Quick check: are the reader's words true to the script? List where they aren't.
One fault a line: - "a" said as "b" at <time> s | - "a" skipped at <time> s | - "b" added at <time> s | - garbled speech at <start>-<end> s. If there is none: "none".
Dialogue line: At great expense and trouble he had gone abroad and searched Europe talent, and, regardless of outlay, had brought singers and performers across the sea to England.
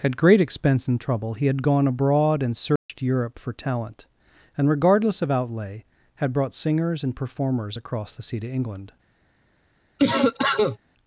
- "for" added at 3.4 s